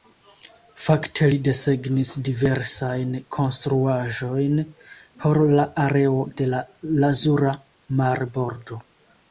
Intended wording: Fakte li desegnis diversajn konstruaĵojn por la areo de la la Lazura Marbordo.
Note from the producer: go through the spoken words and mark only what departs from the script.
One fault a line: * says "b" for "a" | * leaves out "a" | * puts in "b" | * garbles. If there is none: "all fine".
* leaves out "la"